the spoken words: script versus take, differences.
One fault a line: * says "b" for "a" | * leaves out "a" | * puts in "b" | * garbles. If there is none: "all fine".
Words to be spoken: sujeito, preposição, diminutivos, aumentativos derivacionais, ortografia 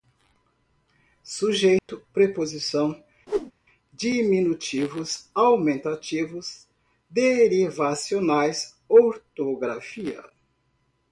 all fine